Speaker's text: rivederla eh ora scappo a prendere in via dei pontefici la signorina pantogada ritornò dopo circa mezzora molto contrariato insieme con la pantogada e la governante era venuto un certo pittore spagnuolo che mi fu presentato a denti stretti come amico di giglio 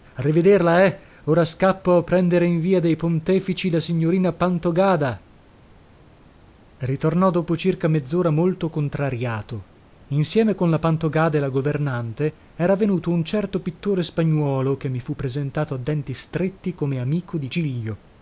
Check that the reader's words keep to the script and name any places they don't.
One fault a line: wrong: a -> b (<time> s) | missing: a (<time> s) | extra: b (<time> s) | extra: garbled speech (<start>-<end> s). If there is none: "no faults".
no faults